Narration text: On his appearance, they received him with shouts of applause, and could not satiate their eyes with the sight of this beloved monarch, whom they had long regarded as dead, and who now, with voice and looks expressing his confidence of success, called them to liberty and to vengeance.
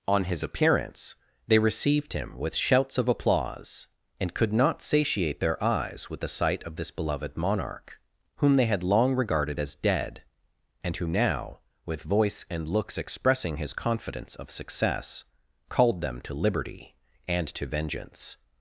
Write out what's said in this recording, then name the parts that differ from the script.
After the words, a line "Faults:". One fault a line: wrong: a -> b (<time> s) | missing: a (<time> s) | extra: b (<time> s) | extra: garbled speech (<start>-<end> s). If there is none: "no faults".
On his appearance, they received him with shouts of applause, and could not satiate their eyes with the sight of this beloved monarch, whom they had long regarded as dead, and who now, with voice and looks expressing his confidence of success, called them to liberty and to vengeance.
Faults:
no faults